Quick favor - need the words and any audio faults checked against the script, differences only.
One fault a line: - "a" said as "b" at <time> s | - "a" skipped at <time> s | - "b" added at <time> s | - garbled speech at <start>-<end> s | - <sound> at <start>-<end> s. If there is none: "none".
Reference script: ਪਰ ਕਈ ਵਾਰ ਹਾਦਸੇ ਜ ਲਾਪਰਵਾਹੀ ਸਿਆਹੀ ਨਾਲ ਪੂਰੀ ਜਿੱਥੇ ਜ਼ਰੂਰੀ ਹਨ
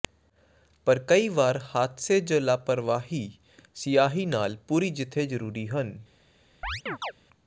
- chirp at 6.6-7.1 s